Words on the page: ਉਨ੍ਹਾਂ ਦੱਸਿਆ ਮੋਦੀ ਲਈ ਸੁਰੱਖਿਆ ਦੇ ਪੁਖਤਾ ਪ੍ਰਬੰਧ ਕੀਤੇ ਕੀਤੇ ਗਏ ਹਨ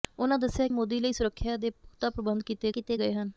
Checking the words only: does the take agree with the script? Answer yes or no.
yes